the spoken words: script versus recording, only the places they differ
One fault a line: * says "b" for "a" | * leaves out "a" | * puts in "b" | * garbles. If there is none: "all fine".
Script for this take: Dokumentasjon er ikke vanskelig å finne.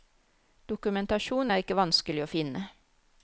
all fine